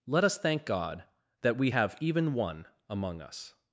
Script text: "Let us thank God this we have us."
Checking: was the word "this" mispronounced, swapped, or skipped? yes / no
yes